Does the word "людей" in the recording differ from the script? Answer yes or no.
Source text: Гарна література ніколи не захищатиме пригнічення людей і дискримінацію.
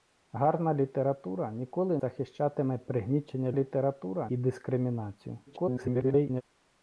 yes